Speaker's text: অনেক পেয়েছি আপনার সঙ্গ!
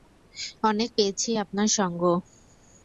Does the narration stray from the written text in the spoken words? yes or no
no